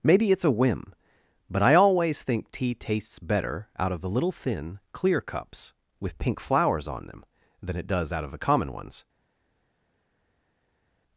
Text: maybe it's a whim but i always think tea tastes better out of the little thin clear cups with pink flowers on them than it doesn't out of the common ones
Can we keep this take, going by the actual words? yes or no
no